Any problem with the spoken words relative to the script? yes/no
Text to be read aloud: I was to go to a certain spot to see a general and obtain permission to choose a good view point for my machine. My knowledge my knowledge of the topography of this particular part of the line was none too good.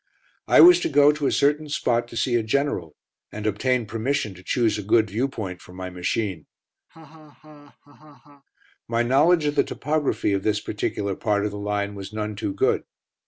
yes